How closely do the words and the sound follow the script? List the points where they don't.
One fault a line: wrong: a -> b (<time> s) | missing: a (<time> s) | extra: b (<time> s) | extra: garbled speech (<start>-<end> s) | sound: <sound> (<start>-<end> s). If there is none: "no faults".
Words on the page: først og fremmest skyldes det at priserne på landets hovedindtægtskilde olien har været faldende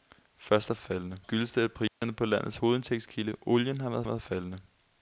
wrong: fremmest -> faldende (0.8 s)
sound: dropout (1.9-2.0 s)
extra: været (4.0 s)